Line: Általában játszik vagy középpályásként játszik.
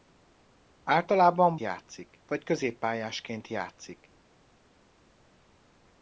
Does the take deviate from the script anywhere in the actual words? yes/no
no